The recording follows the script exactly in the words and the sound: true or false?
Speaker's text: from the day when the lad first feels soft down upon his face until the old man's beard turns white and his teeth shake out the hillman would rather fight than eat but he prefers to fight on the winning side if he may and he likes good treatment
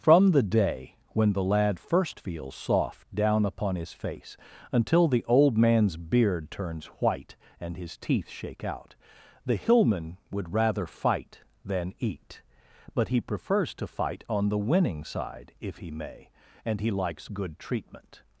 true